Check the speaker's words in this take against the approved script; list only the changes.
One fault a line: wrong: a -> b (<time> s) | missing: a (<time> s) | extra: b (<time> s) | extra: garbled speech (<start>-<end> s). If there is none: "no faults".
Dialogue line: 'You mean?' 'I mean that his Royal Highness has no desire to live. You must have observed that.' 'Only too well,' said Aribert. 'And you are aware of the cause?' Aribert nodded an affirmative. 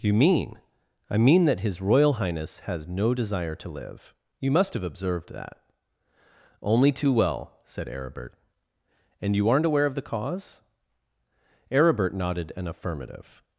wrong: are -> aren't (9.5 s)